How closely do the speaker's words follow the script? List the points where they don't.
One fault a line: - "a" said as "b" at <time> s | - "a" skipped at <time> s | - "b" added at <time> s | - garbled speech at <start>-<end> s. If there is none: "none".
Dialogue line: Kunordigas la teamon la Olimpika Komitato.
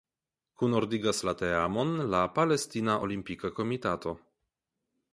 - "Palestina" added at 2.4 s